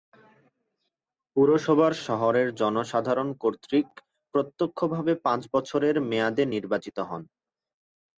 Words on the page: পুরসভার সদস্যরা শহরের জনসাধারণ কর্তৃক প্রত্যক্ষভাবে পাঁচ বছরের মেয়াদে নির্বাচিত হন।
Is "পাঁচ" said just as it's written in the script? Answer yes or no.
yes